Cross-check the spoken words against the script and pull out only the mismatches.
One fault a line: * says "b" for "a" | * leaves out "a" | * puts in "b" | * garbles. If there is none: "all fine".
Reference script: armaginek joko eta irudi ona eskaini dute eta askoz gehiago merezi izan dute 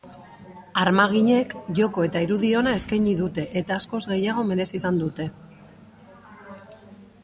all fine